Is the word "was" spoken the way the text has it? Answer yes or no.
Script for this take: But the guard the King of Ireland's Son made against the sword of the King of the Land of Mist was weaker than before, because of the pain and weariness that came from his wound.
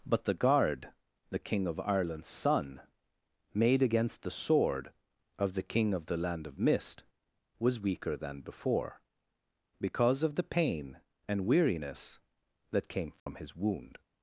yes